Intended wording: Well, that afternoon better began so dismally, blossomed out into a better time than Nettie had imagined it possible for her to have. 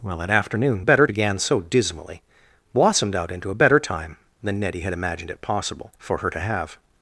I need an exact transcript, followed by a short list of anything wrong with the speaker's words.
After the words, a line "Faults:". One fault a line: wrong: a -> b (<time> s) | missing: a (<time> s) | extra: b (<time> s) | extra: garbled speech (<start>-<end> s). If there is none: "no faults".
Well, that afternoon better began so dismally, blossomed out into a better time than Nettie had imagined it possible for her to have.
Faults:
no faults